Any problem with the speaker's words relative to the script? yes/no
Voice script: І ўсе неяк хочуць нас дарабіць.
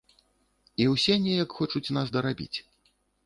no